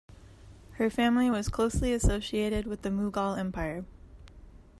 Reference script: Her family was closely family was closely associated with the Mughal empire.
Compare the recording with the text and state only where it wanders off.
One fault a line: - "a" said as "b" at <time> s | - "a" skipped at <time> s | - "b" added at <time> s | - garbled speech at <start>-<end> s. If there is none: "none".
- "family was closely" skipped at 1.9 s